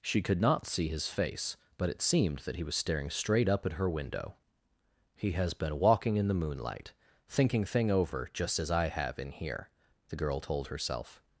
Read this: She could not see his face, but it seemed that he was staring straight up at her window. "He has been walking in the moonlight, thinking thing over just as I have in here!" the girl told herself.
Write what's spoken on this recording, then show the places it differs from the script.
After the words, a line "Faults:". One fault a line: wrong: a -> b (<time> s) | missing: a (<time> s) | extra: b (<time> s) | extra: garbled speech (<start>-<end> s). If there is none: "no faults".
She could not see his face, but it seemed that he was staring straight up at her window. "He has been walking in the moonlight, thinking thing over just as I have in here!" the girl told herself.
Faults:
no faults